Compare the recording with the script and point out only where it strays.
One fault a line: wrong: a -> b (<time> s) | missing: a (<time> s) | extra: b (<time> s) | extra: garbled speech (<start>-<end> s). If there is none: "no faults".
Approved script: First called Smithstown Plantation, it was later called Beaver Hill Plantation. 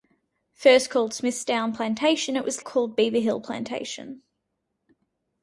missing: later (2.6 s)